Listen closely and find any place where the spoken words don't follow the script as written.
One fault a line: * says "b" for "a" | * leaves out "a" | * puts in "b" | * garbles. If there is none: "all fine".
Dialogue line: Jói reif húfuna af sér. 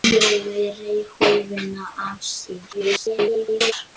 * garbles